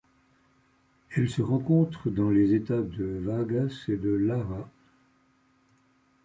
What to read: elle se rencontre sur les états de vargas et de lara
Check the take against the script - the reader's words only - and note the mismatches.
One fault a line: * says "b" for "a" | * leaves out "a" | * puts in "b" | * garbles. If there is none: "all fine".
* says "dans" for "sur"